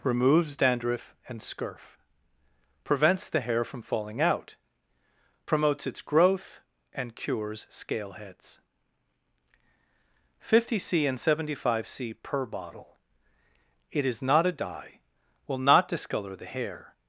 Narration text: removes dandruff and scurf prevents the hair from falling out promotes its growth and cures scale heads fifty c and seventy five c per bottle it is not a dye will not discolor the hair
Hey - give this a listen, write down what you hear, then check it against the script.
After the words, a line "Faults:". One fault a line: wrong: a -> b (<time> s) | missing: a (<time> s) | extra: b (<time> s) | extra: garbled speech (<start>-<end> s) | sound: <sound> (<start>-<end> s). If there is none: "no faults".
removes dandruff and scurf prevents the hair from falling out promotes its growth and cures scale heads fifty c and seventy five c per bottle it is not a dye will not discolor the hair
Faults:
no faults